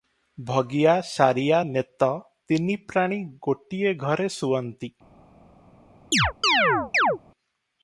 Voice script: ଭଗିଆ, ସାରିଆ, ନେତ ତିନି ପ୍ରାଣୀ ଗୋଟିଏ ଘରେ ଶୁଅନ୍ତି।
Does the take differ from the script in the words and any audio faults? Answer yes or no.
yes